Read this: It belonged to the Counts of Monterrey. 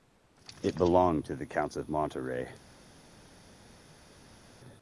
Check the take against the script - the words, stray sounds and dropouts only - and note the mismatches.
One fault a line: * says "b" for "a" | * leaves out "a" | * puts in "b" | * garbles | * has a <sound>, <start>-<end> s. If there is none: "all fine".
all fine